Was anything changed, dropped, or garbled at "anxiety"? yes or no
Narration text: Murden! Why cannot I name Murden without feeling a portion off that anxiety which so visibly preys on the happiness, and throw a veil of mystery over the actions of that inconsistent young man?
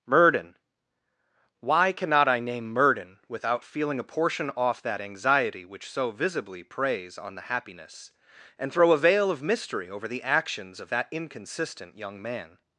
no